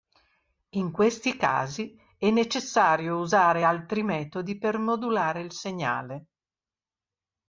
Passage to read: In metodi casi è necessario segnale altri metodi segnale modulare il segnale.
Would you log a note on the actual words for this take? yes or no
yes